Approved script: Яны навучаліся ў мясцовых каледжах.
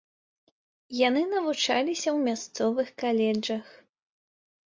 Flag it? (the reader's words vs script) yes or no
no